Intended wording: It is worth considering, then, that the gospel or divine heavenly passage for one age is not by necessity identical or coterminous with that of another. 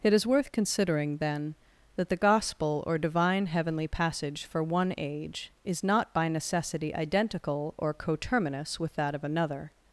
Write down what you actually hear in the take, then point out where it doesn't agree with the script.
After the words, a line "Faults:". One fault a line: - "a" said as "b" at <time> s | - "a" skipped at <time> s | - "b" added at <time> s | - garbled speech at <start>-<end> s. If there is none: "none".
It is worth considering, then, that the gospel or divine heavenly passage for one age is not by necessity identical or coterminous with that of another.
Faults:
none